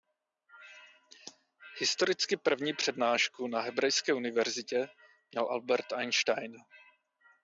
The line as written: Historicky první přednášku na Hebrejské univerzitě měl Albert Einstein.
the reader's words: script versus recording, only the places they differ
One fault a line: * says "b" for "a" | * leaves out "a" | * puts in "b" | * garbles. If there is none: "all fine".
all fine